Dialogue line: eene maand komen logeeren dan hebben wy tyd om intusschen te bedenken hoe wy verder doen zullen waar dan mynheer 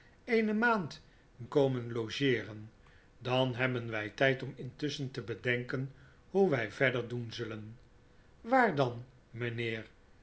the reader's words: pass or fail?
pass